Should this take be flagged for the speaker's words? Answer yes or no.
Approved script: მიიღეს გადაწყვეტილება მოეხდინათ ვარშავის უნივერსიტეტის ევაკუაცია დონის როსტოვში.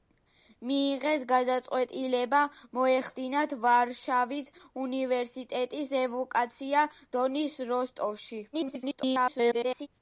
yes